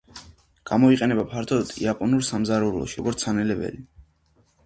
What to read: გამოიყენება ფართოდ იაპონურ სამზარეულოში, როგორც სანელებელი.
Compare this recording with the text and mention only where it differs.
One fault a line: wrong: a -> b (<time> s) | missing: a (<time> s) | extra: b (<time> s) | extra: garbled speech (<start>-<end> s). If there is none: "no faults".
no faults